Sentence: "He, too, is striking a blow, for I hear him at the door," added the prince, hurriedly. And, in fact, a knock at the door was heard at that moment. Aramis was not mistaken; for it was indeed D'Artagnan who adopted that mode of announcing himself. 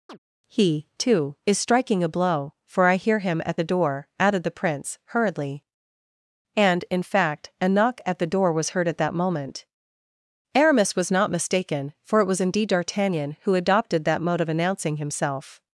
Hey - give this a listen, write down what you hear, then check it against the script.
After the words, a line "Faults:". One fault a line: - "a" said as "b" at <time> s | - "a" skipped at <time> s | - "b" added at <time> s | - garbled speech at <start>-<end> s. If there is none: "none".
"He, too, is striking a blow, for I hear him at the door," added the prince, hurriedly. And, in fact, a knock at the door was heard at that moment. Aramis was not mistaken; for it was indeed D'Artagnan who adopted that mode of announcing himself.
Faults:
none